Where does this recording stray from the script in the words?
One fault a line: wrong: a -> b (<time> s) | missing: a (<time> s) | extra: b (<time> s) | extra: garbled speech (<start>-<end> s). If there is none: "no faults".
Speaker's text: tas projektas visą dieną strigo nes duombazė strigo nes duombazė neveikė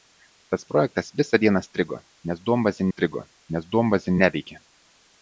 no faults